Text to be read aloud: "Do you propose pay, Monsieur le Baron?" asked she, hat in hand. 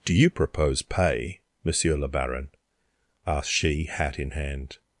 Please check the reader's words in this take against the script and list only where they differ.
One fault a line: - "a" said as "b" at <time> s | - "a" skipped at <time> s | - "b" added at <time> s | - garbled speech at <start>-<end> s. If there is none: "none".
none